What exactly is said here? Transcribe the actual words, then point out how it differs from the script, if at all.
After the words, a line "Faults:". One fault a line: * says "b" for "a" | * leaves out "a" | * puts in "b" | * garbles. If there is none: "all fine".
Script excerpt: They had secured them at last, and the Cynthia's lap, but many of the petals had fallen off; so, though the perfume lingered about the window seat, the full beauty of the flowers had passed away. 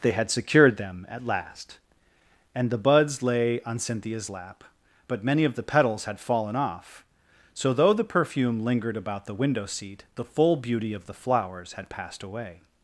They had secured them at last, and the buds lay on Cynthia's lap, but many of the petals had fallen off; so, though the perfume lingered about the window seat, the full beauty of the flowers had passed away.
Faults:
* puts in "buds lay on"